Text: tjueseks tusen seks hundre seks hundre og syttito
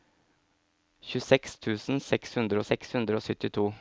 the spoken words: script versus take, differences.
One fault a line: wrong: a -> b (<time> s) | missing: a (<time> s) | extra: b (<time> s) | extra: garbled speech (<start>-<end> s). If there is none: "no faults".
no faults